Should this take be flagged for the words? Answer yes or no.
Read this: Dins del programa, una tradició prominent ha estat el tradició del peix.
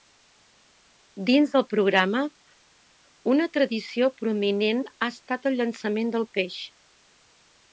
yes